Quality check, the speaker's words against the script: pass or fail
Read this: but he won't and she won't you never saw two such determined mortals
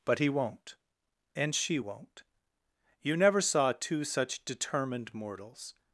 pass